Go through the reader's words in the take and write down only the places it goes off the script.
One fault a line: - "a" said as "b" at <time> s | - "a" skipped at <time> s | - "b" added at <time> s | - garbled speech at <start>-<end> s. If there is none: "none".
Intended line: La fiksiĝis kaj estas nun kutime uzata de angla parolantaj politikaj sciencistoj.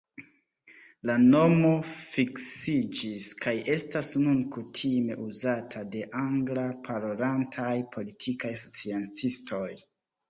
- "nomo" added at 1.3 s